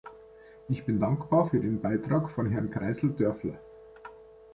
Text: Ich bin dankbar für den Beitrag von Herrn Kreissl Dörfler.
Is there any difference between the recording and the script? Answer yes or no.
no